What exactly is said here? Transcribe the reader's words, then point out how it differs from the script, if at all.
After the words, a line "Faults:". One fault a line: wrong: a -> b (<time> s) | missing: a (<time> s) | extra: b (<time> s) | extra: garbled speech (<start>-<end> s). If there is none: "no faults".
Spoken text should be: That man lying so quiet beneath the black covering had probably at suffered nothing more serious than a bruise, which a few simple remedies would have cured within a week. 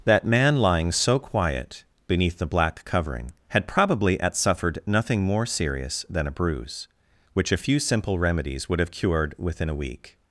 That man lying so quiet beneath the black covering had probably at suffered nothing more serious than a bruise, which a few simple remedies would have cured within a week.
Faults:
no faults